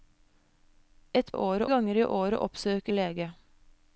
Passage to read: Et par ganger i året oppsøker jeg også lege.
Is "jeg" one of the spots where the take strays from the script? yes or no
yes